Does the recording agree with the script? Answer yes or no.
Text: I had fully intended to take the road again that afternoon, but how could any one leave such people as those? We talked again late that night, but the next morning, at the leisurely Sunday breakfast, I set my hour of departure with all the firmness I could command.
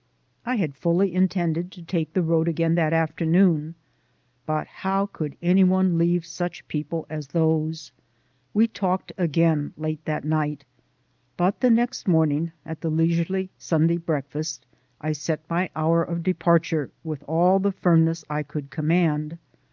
yes